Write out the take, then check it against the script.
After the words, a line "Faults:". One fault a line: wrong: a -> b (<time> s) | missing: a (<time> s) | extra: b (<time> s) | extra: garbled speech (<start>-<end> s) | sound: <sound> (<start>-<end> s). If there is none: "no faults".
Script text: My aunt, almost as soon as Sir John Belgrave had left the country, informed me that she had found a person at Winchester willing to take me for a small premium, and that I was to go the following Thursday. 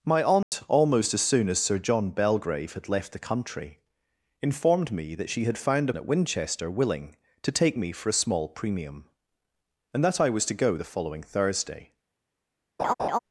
My aunt, almost as soon as Sir John Belgrave had left the country, informed me that she had found at Winchester willing to take me for a small premium, and that I was to go the following Thursday.
Faults:
sound: dropout (0.4-0.5 s)
missing: a person (5.9 s)
sound: laugh (12.8-13.2 s)